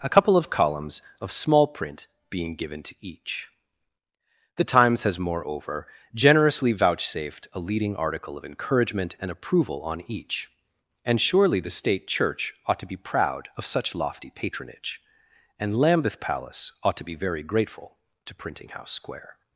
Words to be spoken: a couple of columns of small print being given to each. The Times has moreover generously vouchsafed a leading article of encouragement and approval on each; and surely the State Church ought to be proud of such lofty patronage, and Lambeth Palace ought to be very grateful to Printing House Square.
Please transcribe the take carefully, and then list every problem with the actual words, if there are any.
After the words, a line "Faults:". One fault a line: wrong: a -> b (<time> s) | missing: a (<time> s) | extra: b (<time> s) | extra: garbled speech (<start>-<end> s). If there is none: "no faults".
a couple of columns of small print being given to each. The Times has moreover generously vouchsafed a leading article of encouragement and approval on each; and surely the State Church ought to be proud of such lofty patronage, and Lambeth Palace ought to be very grateful to Printing House Square.
Faults:
no faults